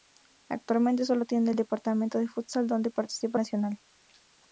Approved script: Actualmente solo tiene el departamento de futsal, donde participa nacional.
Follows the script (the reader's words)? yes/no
yes